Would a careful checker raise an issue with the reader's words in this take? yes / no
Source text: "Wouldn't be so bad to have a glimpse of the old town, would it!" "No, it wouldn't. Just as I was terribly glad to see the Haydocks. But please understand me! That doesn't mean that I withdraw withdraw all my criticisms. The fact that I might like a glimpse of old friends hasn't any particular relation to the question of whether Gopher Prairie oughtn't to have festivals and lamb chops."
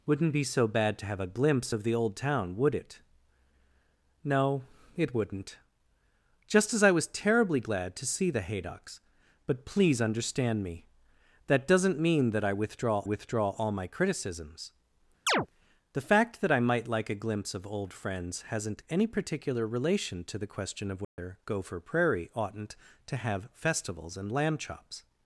no